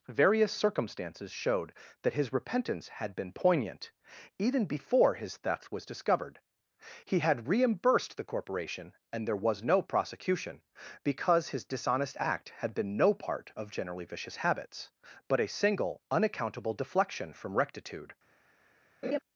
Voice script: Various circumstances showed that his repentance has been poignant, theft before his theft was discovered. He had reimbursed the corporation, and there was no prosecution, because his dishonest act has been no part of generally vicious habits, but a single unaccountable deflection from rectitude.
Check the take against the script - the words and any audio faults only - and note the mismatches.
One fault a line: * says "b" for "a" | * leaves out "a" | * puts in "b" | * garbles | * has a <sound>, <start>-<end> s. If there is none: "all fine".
* says "had" for "has"
* says "even" for "theft"
* says "had" for "has"
* has a laugh, 19.0-19.2 s